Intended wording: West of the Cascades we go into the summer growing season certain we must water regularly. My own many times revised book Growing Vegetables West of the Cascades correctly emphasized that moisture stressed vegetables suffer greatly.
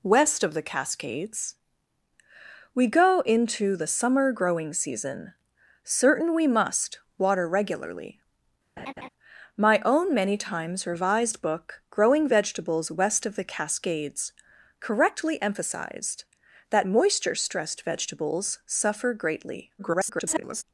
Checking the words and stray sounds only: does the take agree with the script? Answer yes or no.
no